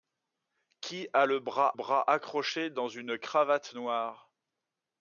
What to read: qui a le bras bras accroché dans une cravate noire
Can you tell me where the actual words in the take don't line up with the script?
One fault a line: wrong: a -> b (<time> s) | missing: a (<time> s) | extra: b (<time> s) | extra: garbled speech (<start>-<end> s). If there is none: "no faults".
no faults